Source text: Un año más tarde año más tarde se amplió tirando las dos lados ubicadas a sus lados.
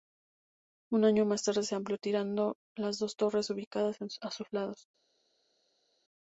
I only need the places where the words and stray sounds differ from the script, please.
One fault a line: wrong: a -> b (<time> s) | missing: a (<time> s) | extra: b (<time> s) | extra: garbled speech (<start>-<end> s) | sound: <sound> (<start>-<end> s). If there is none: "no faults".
missing: año más tarde (1.6 s)
wrong: lados -> torres (3.1 s)